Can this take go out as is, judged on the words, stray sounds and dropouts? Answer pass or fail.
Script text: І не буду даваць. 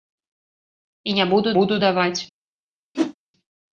fail